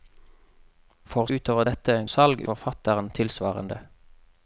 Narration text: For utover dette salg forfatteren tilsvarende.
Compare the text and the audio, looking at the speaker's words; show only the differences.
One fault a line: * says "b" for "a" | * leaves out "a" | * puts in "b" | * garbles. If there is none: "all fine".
all fine